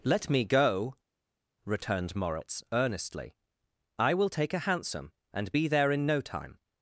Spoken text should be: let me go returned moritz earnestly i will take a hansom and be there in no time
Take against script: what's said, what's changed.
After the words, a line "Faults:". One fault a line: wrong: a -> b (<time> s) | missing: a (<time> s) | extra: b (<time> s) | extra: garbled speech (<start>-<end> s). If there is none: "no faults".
let me go returned moritz earnestly i will take a hansom and be there in no time
Faults:
no faults